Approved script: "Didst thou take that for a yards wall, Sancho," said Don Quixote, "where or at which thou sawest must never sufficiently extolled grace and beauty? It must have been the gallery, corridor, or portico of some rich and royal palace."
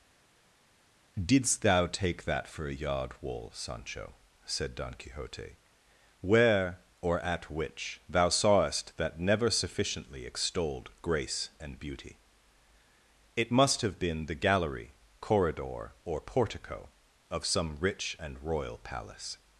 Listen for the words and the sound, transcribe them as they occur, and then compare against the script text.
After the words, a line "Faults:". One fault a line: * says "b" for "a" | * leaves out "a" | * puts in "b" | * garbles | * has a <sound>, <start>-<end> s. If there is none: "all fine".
"Didst thou take that for a yard wall, Sancho," said Don Quixote, "where or at which thou sawest that never sufficiently extolled grace and beauty? It must have been the gallery, corridor, or portico of some rich and royal palace."
Faults:
* says "yard" for "yards"
* says "that" for "must"